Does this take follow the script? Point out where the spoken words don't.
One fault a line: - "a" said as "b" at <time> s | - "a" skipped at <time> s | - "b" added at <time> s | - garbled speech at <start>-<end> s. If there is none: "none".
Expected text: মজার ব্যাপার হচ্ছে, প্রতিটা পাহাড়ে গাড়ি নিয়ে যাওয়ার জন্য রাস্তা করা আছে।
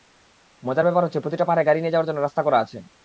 none